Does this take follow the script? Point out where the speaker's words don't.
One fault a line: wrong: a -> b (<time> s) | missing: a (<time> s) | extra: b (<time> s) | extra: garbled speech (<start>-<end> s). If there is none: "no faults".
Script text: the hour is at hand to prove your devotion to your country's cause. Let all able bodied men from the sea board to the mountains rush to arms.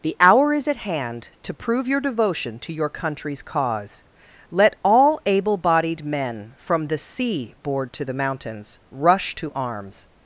no faults